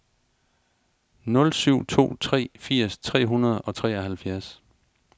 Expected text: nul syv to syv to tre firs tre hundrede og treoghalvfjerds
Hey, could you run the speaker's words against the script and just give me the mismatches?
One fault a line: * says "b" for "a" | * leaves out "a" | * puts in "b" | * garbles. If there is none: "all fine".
* leaves out "syv to"